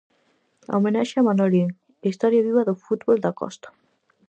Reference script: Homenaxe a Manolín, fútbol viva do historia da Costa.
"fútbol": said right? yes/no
no